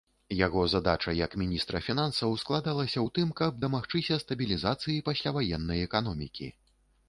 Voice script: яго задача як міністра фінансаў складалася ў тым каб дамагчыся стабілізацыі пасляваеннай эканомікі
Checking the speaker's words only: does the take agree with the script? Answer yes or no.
yes